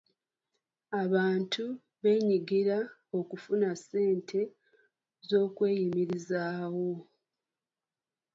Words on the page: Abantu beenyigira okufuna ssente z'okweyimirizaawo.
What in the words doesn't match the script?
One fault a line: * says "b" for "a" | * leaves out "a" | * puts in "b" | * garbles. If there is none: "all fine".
all fine